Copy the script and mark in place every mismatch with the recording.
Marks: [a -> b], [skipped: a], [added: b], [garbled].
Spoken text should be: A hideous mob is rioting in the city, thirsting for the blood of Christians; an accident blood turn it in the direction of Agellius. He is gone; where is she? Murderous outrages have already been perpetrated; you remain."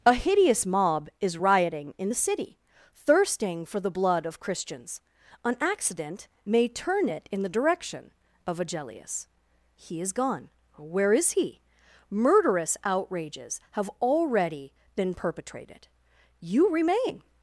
A hideous mob is rioting in the city, thirsting for the blood of Christians; an accident [blood -> may] turn it in the direction of Agellius. He is gone; where is [she? -> he] Murderous outrages have already been perpetrated; you remain."